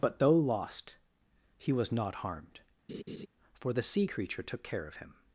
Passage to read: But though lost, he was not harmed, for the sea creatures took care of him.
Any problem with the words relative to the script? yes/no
yes